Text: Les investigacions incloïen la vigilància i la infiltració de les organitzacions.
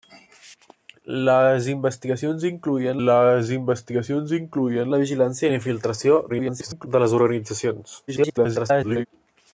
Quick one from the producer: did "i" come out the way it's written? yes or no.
yes